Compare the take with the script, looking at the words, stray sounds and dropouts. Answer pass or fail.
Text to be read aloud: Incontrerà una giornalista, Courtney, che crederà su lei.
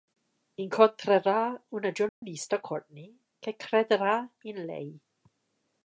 fail